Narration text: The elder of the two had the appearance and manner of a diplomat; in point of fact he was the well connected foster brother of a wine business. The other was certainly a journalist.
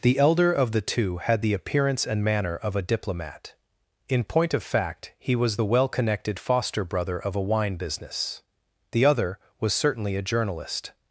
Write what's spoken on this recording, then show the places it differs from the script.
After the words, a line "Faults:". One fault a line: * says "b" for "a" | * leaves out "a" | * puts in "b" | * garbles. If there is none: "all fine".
The elder of the two had the appearance and manner of a diplomat; in point of fact he was the well connected foster brother of a wine business. The other was certainly a journalist.
Faults:
all fine